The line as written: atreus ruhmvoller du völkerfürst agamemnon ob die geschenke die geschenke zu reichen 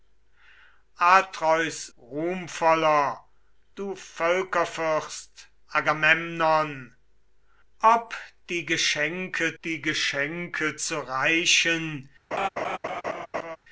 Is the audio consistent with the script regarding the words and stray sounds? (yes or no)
no